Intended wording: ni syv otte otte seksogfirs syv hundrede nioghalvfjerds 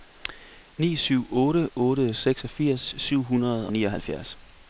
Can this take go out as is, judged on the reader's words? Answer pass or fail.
pass